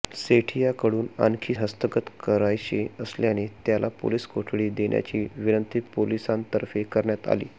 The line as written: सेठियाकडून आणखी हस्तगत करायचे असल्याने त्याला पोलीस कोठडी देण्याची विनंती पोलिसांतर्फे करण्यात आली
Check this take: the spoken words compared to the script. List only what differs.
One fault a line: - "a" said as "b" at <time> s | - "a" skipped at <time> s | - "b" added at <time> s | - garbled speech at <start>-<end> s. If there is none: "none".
none